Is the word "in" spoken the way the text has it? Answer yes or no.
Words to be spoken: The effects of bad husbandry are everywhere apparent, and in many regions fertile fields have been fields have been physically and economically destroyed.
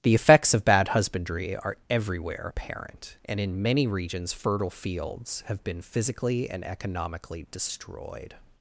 yes